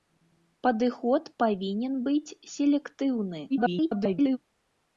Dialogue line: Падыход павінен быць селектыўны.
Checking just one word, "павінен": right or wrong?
right